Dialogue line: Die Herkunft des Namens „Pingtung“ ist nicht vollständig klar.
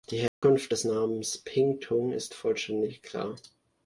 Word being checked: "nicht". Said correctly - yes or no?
no